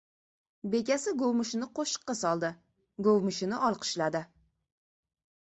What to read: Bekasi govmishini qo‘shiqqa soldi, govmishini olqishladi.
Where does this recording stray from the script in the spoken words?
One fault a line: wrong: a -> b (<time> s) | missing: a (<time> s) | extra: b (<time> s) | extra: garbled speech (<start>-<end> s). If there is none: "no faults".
no faults